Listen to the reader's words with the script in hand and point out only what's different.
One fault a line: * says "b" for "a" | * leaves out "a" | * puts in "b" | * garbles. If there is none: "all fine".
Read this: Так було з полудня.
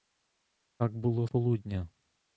* leaves out "з"